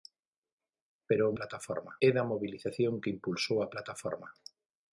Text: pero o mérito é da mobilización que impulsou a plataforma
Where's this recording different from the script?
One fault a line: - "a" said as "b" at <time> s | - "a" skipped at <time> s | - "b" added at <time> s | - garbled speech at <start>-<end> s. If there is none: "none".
- "mérito" said as "plataforma" at 1.4 s